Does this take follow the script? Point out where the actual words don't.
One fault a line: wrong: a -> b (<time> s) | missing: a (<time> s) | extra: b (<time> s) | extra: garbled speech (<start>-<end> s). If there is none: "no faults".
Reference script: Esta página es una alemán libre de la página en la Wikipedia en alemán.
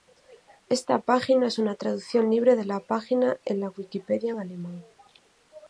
wrong: alemán -> traducción (1.8 s)